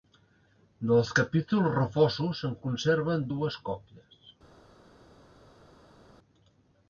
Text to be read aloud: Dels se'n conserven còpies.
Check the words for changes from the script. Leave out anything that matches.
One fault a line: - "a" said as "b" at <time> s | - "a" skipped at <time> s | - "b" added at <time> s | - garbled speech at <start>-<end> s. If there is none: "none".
- "capítols refosos" added at 1.2 s
- "dues" added at 3.3 s